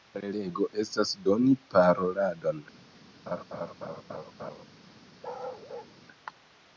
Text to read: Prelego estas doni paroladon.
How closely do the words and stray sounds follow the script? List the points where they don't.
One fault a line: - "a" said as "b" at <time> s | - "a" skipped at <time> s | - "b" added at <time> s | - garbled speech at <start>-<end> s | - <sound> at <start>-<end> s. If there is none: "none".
- laugh at 3.3-4.6 s
- bark at 5.2-5.9 s